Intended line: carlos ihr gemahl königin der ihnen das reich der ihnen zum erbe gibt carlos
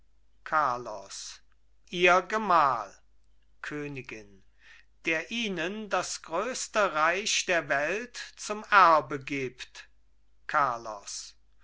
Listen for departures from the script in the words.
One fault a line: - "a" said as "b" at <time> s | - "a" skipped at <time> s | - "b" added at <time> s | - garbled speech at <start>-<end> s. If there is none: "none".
- "größte" added at 6.2 s
- "ihnen" said as "welt" at 7.7 s